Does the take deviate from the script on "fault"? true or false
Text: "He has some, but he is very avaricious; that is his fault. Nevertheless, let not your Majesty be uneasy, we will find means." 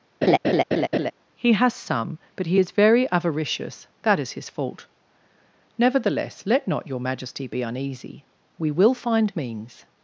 false